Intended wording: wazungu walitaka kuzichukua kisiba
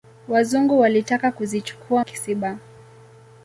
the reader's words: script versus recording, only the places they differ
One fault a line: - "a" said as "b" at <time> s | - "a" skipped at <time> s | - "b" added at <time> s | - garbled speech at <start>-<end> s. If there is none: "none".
none